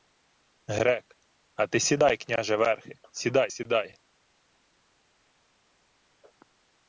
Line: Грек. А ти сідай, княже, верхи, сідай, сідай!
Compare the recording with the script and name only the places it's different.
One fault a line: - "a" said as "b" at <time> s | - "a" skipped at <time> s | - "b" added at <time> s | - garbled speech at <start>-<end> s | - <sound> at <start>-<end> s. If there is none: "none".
none